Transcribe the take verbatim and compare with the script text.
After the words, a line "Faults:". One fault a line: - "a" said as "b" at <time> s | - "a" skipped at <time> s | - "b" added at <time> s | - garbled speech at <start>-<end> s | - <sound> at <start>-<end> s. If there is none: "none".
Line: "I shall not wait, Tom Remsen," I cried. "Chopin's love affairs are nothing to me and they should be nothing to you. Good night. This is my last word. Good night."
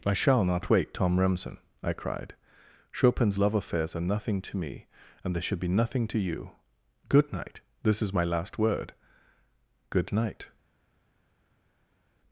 "I shall not wait, Tom Remsen," I cried. "Chopin's love affairs are nothing to me and they should be nothing to you. Good night. This is my last word. Good night."
Faults:
none